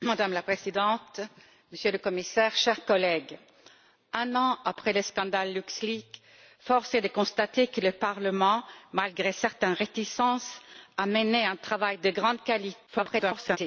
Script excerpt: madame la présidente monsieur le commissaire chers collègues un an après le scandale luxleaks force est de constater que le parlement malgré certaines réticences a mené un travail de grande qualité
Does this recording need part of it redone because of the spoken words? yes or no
yes